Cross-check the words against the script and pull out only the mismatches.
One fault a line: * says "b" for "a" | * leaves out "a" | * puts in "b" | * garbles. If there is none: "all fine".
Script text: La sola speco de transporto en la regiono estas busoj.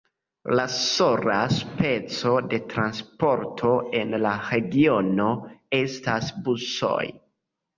all fine